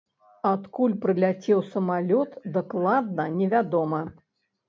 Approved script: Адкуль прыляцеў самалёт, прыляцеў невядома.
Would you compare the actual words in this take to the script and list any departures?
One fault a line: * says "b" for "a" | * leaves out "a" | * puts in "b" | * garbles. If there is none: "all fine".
* says "дакладна" for "прыляцеў"